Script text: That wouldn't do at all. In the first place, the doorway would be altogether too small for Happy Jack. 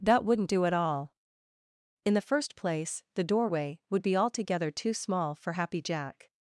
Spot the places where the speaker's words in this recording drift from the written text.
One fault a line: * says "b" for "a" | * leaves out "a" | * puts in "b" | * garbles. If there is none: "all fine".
all fine